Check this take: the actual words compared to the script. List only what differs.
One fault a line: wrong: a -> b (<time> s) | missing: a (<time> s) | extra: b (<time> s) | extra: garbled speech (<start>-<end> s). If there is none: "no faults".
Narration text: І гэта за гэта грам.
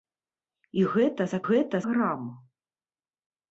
no faults